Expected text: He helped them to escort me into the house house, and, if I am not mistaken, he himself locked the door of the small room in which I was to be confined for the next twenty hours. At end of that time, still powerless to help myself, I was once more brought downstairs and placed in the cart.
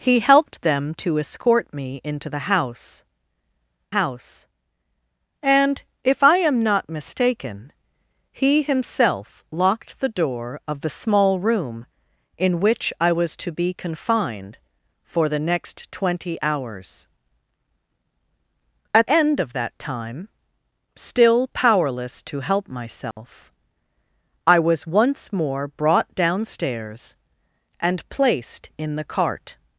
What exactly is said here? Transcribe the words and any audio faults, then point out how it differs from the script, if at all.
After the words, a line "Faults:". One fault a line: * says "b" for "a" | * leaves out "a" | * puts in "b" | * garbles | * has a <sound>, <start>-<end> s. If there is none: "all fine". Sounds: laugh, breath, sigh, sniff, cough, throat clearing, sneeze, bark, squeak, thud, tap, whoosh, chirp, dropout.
He helped them to escort me into the house house, and, if I am not mistaken, he himself locked the door of the small room in which I was to be confined for the next twenty hours. At end of that time, still powerless to help myself, I was once more brought downstairs and placed in the cart.
Faults:
* has a dropout, 23.1-23.2 s